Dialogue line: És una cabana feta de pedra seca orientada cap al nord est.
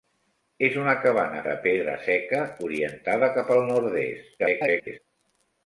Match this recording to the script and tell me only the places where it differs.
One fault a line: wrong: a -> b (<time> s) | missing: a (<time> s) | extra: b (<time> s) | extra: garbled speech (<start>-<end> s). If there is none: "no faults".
missing: feta (1.4 s)
extra: garbled speech (4.4-5.0 s)